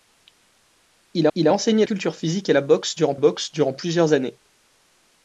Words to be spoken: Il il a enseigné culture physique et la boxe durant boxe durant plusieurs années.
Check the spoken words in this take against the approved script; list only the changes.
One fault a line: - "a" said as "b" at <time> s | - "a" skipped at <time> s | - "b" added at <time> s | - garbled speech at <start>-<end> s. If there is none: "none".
none